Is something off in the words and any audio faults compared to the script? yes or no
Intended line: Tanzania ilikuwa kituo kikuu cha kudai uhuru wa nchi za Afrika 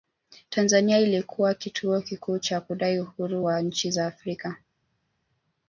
no